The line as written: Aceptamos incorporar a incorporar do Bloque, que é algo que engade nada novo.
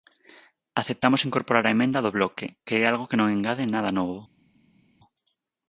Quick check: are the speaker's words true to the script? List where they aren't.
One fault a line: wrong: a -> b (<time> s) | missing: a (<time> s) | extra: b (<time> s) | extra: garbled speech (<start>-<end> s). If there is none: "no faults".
wrong: incorporar -> emenda (1.8 s)
extra: non (3.2 s)